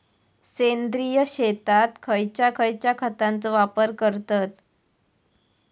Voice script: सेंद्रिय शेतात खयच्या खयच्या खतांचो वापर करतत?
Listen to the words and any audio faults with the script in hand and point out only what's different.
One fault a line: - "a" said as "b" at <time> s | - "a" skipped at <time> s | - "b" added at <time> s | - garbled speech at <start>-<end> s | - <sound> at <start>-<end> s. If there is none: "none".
none